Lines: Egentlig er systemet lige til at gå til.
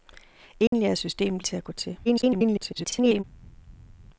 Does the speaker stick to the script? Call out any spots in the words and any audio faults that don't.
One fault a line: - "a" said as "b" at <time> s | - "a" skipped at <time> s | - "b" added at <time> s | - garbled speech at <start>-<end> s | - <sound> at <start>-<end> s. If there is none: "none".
- dropout at 0.7-0.7 s
- "lige" skipped at 1.4 s
- garbled speech at 2.1-3.2 s